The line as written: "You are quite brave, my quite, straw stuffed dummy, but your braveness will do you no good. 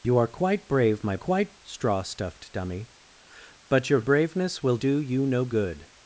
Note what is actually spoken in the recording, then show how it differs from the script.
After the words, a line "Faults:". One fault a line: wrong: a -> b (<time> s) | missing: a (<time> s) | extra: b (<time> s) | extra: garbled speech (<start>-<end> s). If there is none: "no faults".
"You are quite brave, my quite, straw stuffed dummy, but your braveness will do you no good.
Faults:
no faults